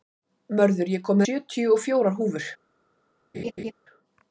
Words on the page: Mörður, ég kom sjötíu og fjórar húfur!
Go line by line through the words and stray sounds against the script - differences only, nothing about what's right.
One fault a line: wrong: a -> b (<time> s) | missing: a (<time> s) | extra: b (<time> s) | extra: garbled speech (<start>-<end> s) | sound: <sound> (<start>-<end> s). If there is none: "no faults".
sound: laugh (3.3-3.7 s)